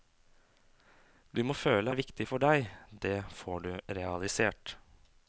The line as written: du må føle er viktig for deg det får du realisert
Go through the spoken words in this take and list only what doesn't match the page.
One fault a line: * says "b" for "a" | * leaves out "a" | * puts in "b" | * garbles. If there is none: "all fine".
all fine